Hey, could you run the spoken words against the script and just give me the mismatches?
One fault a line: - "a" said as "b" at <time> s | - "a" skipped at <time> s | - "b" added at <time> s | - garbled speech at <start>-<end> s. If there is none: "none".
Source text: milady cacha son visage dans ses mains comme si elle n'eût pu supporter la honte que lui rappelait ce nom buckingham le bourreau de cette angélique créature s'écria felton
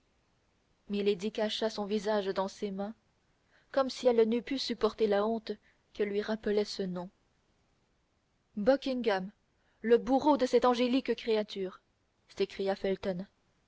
none